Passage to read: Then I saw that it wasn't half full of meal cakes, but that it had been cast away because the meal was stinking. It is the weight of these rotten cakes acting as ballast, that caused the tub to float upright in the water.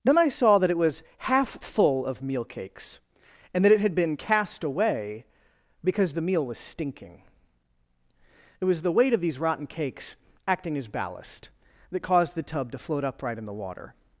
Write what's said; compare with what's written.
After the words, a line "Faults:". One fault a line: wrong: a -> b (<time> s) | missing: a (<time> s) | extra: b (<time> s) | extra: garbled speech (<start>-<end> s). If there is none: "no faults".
Then I saw that it was half full of meal cakes, and that it had been cast away because the meal was stinking. It was the weight of these rotten cakes acting as ballast, that caused the tub to float upright in the water.
Faults:
wrong: wasn't -> was (0.8 s)
wrong: but -> and (3.5 s)
wrong: is -> was (8.7 s)